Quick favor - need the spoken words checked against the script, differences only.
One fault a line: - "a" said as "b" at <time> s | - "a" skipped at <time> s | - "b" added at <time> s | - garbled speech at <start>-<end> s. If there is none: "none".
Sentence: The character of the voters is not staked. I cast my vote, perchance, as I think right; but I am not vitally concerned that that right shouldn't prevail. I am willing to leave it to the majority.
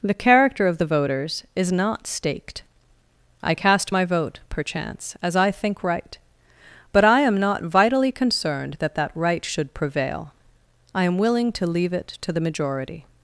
- "shouldn't" said as "should" at 9.4 s